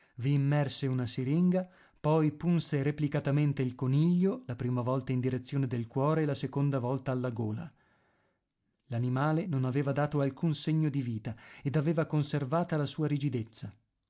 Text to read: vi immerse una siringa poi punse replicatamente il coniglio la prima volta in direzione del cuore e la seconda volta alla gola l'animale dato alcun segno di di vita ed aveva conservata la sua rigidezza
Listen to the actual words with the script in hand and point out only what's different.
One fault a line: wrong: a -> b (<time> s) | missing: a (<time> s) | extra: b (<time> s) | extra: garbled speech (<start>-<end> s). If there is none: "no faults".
extra: non aveva (9.4 s)
missing: di (11.0 s)